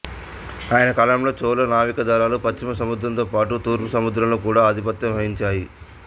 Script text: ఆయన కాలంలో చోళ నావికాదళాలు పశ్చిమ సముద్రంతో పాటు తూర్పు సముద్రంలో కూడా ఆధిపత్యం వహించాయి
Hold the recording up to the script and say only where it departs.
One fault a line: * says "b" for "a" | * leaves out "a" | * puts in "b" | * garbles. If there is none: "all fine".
all fine